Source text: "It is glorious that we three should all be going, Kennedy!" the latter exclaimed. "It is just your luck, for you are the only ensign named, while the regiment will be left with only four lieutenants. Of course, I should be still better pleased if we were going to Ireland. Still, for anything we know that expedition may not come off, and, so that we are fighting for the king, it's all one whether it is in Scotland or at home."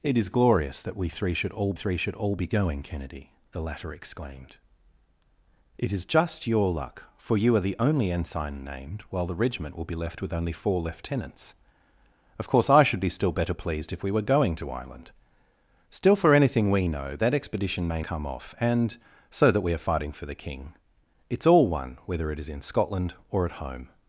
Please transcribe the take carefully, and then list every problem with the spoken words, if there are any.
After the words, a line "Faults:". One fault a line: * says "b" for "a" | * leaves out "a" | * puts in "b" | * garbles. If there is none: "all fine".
"It is glorious that we three should all three should all be going, Kennedy!" the latter exclaimed. "It is just your luck, for you are the only ensign named, while the regiment will be left with only four lieutenants. Of course, I should be still better pleased if we were going to Ireland. Still, for anything we know that expedition may come off, and, so that we are fighting for the king, it's all one whether it is in Scotland or at home."
Faults:
* puts in "three should all"
* leaves out "not"